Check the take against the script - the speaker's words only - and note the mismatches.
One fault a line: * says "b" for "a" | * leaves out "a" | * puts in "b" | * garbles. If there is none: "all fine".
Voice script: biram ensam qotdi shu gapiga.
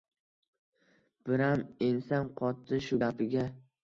all fine